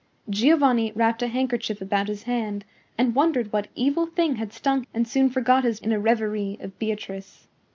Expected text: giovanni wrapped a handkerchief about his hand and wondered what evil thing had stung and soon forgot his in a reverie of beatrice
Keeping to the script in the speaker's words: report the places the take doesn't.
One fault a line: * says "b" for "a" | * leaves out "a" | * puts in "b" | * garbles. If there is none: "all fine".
all fine